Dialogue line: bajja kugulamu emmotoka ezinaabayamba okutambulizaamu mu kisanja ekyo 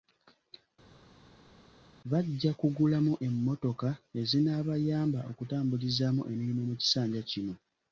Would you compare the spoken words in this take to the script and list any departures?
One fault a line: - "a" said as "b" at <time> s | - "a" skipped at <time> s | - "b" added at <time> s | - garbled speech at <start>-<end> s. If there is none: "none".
- "emirimu" added at 6.3 s
- "ekyo" said as "kino" at 7.3 s